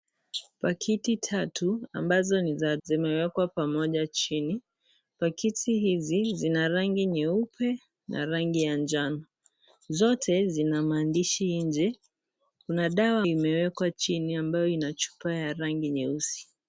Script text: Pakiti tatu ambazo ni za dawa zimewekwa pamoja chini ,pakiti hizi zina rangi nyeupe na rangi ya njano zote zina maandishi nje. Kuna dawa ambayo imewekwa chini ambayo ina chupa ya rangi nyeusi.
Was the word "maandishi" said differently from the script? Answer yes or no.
no